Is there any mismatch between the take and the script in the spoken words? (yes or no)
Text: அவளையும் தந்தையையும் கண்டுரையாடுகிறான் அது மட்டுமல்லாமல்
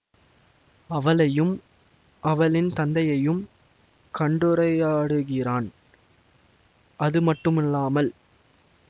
yes